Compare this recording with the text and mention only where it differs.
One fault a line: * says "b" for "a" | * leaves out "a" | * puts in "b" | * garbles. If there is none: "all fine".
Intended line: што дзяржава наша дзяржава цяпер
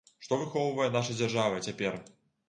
* says "выхоўвае" for "дзяржава"